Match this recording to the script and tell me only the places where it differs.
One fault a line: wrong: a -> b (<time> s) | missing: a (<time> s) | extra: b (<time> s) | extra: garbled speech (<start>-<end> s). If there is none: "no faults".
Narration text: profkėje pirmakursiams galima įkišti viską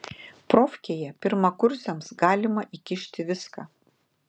no faults